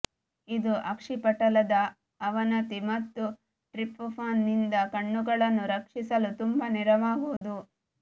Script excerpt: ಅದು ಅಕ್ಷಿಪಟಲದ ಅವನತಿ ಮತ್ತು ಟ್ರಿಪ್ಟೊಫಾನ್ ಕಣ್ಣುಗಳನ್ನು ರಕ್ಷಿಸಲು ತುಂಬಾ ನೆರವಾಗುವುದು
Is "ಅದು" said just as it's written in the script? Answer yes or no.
no